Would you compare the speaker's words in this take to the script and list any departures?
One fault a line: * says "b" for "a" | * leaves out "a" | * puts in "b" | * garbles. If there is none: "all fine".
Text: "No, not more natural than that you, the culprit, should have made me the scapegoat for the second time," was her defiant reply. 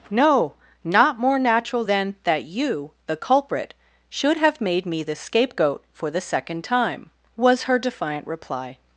all fine